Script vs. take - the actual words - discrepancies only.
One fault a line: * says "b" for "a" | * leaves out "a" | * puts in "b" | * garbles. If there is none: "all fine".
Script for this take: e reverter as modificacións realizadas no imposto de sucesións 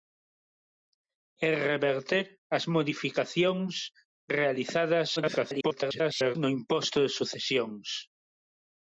* garbles